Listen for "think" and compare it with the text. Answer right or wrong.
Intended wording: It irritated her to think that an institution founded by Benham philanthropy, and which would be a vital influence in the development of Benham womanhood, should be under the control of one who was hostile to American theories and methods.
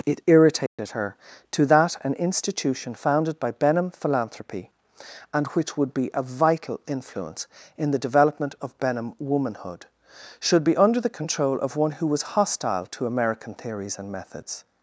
wrong